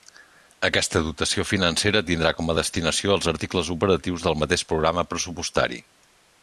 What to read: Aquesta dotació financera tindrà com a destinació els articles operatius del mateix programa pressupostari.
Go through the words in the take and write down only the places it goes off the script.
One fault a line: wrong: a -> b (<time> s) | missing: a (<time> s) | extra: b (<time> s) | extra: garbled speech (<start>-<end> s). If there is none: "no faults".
no faults